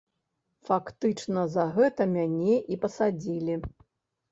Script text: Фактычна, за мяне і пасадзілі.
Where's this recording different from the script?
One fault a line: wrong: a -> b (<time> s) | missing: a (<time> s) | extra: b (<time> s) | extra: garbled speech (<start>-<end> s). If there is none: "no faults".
extra: гэта (1.8 s)